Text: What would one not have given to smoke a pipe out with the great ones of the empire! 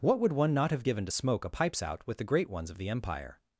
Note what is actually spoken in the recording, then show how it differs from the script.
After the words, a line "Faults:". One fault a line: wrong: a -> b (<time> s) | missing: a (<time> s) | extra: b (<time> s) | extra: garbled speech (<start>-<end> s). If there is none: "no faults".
What would one not have given to smoke a pipes out with the great ones of the empire!
Faults:
wrong: pipe -> pipes (1.5 s)